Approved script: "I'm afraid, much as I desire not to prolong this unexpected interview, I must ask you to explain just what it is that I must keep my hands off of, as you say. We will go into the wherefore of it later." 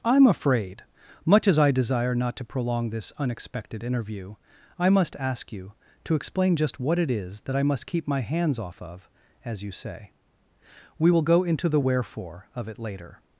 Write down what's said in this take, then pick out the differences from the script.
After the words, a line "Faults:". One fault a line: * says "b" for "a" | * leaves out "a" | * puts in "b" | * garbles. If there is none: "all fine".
"I'm afraid, much as I desire not to prolong this unexpected interview, I must ask you to explain just what it is that I must keep my hands off of, as you say. We will go into the wherefore of it later."
Faults:
all fine